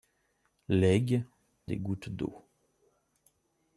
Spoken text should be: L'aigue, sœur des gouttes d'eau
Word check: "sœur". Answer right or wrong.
wrong